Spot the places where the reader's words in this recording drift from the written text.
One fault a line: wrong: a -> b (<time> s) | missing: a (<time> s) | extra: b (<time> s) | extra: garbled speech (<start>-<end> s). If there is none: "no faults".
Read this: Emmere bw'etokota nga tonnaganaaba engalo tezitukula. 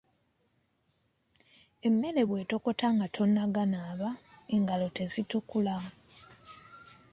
no faults